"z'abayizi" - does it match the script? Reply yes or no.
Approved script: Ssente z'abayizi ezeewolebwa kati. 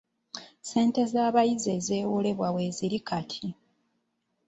yes